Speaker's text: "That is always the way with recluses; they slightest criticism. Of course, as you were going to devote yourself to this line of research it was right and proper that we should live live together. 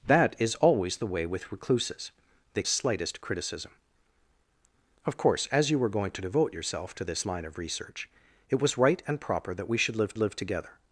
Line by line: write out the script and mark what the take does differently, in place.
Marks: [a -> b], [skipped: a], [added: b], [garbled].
"That is always the way with recluses; they slightest criticism. Of course, as you were going to devote yourself to this line of research it was right and proper that we should live live together.